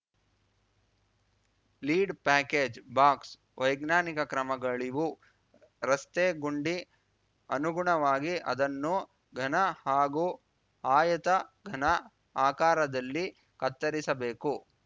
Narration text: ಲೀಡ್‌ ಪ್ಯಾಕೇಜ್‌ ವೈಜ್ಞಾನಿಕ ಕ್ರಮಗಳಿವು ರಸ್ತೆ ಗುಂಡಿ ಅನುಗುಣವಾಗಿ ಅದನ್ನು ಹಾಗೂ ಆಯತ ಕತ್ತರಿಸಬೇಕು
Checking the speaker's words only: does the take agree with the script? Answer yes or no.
no